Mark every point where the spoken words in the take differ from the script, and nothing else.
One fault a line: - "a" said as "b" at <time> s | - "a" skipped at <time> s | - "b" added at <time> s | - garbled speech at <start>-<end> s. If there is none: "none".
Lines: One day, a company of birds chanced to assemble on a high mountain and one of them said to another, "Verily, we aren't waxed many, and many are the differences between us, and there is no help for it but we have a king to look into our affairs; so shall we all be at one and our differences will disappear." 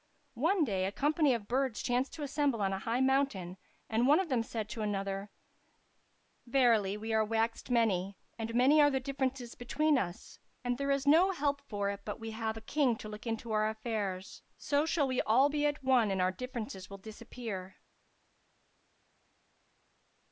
- "aren't" said as "are" at 7.1 s